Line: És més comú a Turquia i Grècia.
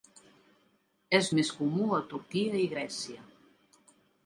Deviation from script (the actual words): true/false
false